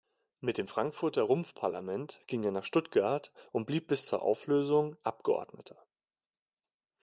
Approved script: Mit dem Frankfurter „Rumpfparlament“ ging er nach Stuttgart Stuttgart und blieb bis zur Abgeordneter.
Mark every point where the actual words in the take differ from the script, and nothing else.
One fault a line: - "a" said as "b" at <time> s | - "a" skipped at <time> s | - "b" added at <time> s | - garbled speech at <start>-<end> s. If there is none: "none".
- "Stuttgart" skipped at 3.4 s
- "Auflösung" added at 4.2 s